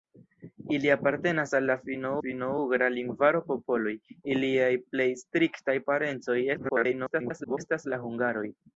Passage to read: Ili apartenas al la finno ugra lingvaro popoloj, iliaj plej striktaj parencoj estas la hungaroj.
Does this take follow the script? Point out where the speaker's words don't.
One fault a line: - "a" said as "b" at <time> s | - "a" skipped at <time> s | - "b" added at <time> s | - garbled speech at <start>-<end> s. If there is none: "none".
- "finno" added at 2.3 s
- garbled speech at 6.5-7.6 s